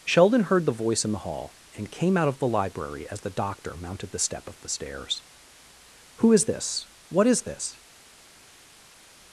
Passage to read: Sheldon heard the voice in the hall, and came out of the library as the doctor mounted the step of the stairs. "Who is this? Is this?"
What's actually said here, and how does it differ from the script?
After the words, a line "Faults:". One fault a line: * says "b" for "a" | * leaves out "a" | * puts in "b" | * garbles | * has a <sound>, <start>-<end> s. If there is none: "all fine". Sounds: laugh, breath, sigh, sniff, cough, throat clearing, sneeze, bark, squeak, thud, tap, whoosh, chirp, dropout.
Sheldon heard the voice in the hall, and came out of the library as the doctor mounted the step of the stairs. "Who is this? What is this?"
Faults:
* puts in "What"